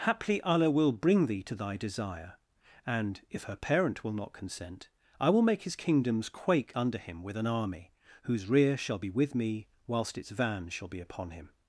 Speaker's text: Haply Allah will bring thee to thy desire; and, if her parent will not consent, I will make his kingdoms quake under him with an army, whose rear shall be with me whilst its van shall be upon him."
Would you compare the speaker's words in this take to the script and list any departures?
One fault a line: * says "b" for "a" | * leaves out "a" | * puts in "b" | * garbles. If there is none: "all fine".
all fine